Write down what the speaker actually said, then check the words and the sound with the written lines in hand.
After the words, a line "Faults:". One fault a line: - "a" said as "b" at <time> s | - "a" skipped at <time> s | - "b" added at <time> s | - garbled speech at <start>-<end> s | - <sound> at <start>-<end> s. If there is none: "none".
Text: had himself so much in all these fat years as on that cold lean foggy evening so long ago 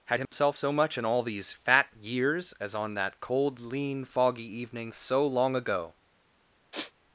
had himself so much in all these fat years as on that cold lean foggy evening so long ago
Faults:
- dropout at 0.3-0.3 s
- sniff at 6.7-6.9 s